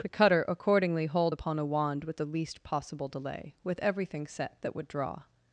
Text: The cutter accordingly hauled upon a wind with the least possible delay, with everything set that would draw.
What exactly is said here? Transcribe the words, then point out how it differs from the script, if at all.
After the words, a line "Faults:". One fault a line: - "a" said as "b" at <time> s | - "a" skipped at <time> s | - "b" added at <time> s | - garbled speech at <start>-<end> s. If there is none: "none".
The cutter accordingly hauled upon a wand with the least possible delay, with everything set that would draw.
Faults:
- "wind" said as "wand" at 1.6 s